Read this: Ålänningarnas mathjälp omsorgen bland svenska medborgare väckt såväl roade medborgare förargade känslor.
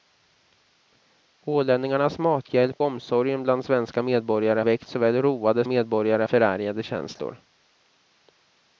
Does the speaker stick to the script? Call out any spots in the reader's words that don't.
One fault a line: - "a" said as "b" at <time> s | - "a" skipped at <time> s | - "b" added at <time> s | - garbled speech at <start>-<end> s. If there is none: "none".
none